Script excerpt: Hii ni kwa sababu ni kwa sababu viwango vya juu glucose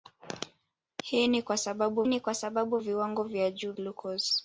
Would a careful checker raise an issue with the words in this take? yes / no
no